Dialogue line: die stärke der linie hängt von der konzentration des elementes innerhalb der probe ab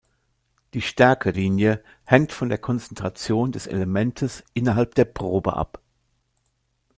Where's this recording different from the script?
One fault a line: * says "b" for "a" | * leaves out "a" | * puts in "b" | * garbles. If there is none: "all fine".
* leaves out "der"